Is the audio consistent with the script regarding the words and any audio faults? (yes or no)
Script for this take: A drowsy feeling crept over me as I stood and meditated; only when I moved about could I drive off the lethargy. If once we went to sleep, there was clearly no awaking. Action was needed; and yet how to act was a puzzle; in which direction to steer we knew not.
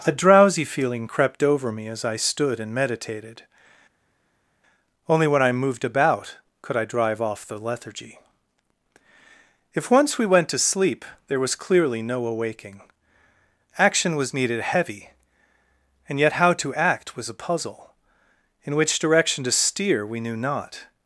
no